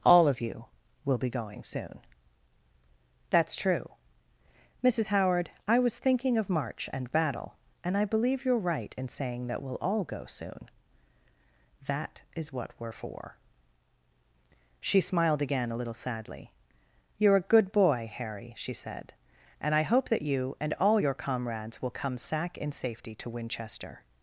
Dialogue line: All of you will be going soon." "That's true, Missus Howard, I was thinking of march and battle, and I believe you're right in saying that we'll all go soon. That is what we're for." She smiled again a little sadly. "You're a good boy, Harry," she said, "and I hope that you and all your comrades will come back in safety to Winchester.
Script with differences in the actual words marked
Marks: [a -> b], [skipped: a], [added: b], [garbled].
All of you will be going soon." "That's true, Missus Howard, I was thinking of march and battle, and I believe you're right in saying that we'll all go soon. That is what we're for." She smiled again a little sadly. "You're a good boy, Harry," she said, "and I hope that you and all your comrades will come [back -> sack] in safety to Winchester.